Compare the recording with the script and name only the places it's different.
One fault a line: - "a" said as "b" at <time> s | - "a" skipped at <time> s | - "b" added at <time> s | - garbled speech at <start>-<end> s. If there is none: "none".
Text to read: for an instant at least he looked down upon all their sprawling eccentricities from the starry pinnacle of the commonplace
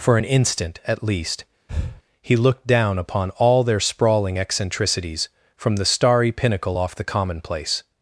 - "of" said as "off" at 6.8 s